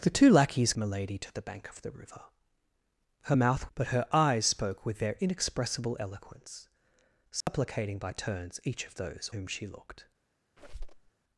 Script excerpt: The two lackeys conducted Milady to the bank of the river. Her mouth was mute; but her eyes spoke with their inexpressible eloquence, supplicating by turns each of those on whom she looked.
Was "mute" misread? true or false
true